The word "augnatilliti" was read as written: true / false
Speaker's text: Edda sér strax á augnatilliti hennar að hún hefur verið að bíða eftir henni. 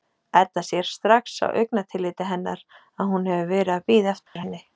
true